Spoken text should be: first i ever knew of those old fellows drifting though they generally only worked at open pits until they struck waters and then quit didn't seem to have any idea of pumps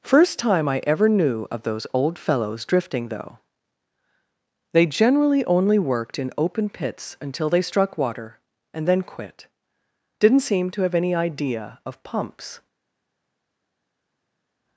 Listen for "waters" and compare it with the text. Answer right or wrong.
wrong